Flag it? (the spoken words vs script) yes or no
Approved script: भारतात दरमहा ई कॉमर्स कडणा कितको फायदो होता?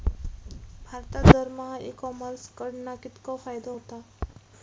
no